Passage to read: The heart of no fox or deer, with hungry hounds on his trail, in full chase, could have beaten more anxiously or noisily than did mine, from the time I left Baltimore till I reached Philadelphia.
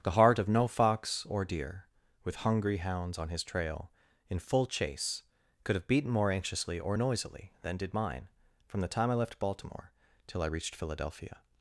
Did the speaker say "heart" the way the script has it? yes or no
yes